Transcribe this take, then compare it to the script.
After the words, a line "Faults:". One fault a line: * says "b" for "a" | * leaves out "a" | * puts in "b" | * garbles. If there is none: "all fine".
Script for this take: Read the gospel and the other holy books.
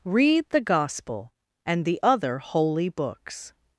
Read the gospel and the other holy books.
Faults:
all fine